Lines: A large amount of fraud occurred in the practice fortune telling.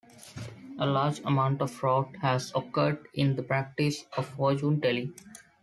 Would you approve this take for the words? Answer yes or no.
no